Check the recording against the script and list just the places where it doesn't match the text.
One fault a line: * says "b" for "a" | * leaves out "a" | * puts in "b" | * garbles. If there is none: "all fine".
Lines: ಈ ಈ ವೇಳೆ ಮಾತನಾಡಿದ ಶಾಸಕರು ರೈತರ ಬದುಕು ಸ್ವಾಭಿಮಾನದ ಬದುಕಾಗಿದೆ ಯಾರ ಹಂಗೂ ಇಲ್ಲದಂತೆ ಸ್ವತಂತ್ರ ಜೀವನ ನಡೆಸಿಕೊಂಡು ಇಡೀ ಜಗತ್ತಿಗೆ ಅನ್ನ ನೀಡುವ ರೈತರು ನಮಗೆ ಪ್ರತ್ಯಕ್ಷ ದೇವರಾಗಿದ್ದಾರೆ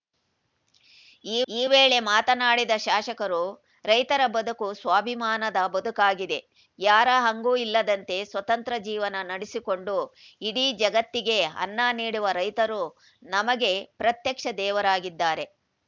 all fine